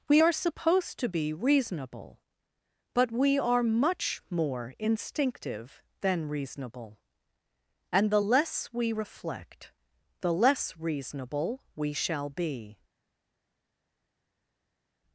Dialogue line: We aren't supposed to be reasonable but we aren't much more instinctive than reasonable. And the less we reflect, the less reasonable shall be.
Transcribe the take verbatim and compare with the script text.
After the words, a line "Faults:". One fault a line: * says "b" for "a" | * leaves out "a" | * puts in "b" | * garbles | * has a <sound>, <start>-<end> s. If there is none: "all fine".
We are supposed to be reasonable but we are much more instinctive than reasonable. And the less we reflect, the less reasonable we shall be.
Faults:
* says "are" for "aren't"
* says "are" for "aren't"
* puts in "we"